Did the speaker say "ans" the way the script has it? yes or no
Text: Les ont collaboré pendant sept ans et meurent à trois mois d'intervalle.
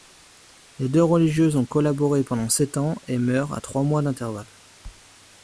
yes